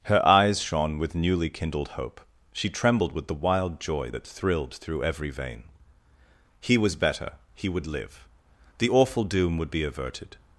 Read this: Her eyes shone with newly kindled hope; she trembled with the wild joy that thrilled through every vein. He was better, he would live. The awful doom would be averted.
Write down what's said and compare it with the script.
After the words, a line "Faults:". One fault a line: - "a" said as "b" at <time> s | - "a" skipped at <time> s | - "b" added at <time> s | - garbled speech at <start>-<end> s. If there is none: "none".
Her eyes shone with newly kindled hope; she trembled with the wild joy that thrilled through every vein. He was better, he would live. The awful doom would be averted.
Faults:
none